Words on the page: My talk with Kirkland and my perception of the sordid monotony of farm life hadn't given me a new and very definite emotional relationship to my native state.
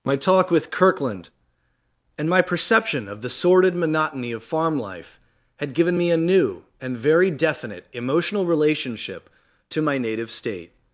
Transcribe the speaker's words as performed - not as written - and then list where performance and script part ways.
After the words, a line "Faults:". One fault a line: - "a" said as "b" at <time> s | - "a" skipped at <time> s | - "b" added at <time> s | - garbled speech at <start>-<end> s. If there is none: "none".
My talk with Kirkland and my perception of the sordid monotony of farm life had given me a new and very definite emotional relationship to my native state.
Faults:
- "hadn't" said as "had" at 5.6 s